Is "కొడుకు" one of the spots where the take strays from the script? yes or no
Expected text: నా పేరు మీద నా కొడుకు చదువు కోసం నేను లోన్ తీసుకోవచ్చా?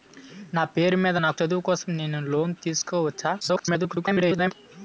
yes